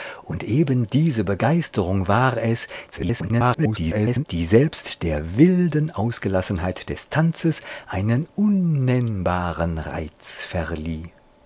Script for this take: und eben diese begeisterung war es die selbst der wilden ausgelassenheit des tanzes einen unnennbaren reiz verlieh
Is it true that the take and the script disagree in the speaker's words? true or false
true